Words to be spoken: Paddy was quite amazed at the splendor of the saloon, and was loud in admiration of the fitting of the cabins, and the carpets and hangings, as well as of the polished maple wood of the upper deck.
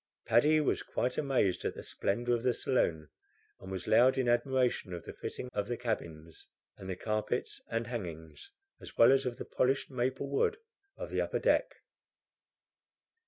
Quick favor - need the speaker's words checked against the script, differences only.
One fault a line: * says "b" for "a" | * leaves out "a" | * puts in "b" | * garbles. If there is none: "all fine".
all fine